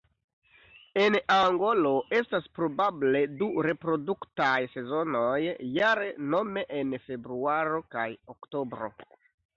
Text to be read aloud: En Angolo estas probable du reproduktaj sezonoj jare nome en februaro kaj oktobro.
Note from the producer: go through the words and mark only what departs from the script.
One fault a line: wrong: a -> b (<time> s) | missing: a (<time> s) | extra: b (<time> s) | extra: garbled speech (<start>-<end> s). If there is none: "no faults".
no faults